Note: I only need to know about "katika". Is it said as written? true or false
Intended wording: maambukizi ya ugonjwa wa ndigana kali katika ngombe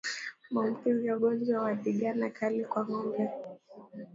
false